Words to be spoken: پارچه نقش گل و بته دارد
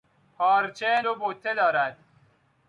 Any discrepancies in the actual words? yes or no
yes